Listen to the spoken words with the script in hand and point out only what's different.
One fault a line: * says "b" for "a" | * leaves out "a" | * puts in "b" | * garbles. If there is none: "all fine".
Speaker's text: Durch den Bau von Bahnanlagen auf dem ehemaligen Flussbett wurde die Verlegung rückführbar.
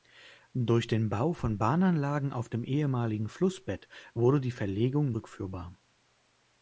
all fine